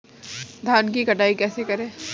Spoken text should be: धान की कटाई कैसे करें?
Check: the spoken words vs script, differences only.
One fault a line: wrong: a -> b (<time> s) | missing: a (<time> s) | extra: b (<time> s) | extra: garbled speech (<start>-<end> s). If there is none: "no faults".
no faults